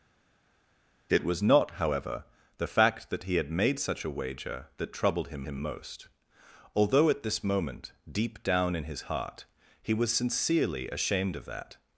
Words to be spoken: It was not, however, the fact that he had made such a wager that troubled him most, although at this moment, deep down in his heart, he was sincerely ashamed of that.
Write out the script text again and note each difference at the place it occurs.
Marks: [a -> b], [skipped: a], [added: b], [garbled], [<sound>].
It was not, however, the fact that he had made such a wager that troubled him [added: him] most, although at this moment, deep down in his heart, he was sincerely ashamed of that.